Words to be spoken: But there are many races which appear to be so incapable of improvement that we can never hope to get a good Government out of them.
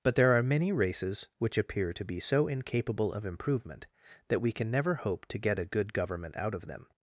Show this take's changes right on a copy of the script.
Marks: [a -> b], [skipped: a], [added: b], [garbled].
But there are many races which appear to be so incapable of improvement that we can never hope to get a good Government out of them.